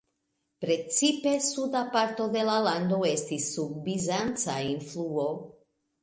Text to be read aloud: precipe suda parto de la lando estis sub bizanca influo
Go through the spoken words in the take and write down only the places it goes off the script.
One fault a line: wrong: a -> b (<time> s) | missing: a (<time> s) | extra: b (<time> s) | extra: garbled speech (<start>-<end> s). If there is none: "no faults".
no faults